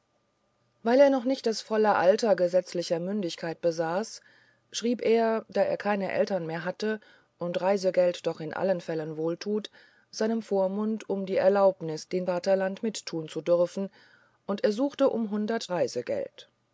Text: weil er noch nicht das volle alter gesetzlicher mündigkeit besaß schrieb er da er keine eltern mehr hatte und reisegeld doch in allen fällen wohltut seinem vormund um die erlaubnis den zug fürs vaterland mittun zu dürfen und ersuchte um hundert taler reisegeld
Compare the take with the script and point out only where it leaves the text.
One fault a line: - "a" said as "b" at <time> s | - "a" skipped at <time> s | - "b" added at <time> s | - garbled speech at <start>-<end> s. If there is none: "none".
- "zug fürs" skipped at 12.3 s
- "taler" skipped at 15.7 s